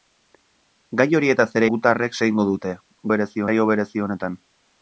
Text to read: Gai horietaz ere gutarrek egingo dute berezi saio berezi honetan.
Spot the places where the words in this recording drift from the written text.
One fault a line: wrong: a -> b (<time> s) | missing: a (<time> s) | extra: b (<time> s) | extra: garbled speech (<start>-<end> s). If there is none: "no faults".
no faults